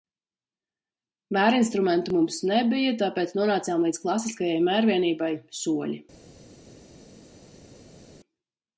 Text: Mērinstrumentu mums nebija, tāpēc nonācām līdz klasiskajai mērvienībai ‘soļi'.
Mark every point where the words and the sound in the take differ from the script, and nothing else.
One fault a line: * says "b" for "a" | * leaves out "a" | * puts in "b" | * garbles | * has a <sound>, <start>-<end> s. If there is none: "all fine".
all fine